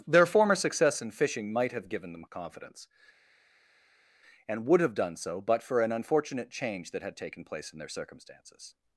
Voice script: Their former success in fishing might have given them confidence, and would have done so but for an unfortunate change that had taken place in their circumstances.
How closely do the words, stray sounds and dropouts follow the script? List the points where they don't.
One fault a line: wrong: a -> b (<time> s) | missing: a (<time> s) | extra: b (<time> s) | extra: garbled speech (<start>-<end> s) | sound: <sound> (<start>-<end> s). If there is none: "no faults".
no faults